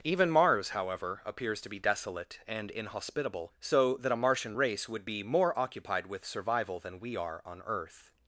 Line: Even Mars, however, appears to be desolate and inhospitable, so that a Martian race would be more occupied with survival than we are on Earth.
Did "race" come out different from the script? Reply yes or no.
no